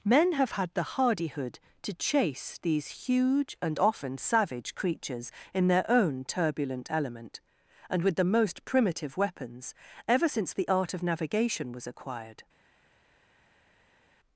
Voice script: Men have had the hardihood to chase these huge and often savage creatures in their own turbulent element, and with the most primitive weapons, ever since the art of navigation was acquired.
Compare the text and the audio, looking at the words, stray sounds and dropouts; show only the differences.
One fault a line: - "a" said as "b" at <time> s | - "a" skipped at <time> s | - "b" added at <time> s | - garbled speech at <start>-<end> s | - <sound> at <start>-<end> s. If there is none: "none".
none